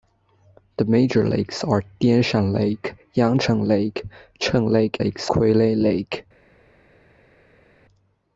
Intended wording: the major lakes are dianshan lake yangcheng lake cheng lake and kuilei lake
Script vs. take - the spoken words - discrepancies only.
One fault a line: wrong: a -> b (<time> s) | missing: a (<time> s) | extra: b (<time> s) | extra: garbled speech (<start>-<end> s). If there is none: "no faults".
wrong: and -> lakes (5.0 s)